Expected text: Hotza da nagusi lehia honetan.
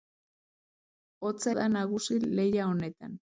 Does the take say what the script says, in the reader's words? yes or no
yes